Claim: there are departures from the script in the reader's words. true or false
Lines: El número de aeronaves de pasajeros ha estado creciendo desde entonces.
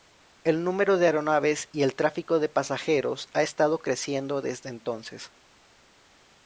true